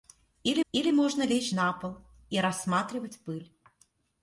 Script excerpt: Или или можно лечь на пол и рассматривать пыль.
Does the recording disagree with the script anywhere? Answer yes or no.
no